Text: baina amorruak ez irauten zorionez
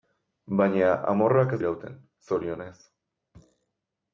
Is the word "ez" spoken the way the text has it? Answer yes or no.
yes